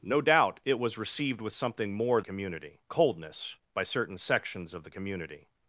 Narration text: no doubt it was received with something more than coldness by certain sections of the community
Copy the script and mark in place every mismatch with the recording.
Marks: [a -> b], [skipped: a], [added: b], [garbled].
no doubt it was received with something more [than -> community] coldness by certain sections of the community